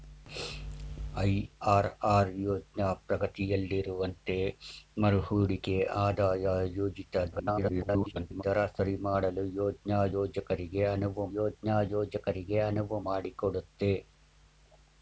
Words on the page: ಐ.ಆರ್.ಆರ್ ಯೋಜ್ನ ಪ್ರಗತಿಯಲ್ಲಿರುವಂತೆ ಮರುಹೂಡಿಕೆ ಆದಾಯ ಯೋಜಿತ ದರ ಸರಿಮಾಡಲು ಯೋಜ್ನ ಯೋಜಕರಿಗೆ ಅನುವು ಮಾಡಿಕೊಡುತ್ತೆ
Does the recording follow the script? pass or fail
fail